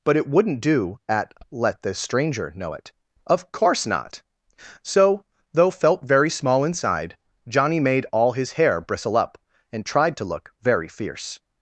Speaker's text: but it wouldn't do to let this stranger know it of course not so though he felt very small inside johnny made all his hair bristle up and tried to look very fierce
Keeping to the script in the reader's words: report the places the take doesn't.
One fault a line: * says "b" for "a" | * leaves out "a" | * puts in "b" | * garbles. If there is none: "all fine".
* says "at" for "to"
* leaves out "he"